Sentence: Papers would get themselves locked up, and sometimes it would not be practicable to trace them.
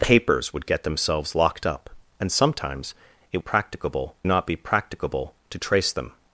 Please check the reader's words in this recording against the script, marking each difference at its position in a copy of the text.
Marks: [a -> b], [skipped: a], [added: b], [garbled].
Papers would get themselves locked up, and sometimes it [would -> practicable] not be practicable to trace them.